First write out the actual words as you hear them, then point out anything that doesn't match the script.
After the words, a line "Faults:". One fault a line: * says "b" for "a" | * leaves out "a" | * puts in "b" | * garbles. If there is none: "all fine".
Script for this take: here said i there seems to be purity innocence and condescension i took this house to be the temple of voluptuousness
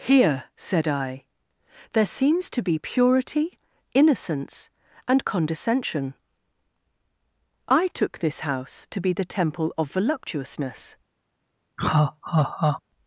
here said i there seems to be purity innocence and condescension i took this house to be the temple of voluptuousness
Faults:
all fine